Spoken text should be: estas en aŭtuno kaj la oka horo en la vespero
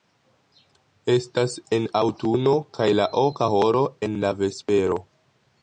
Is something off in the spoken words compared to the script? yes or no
no